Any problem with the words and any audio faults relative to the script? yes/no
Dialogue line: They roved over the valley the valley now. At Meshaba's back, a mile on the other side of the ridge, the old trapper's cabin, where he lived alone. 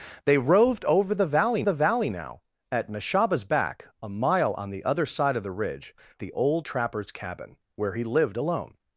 no